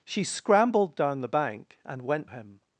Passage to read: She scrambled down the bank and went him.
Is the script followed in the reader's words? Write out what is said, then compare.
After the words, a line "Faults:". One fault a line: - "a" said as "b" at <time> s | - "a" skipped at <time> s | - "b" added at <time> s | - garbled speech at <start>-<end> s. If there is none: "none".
She scrambled down the bank and went him.
Faults:
none